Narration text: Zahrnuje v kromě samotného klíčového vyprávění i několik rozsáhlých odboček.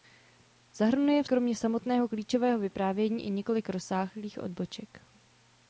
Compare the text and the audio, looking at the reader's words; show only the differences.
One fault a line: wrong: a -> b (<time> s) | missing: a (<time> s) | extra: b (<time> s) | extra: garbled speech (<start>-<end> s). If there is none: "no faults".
no faults